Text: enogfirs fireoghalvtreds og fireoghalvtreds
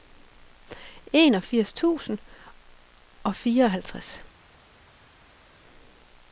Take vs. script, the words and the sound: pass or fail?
fail